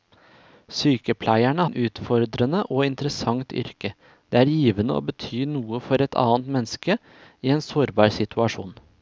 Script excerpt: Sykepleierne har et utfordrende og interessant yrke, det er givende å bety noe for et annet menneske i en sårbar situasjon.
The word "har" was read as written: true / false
false